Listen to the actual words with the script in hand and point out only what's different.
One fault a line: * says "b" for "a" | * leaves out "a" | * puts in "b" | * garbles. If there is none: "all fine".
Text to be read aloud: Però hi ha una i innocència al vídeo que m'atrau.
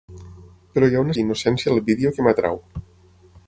all fine